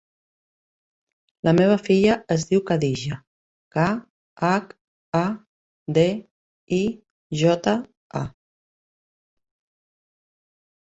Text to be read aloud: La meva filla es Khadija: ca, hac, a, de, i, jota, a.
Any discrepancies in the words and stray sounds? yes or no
yes